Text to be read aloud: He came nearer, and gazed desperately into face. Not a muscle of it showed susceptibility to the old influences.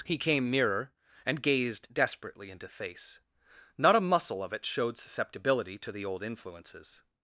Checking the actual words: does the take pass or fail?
pass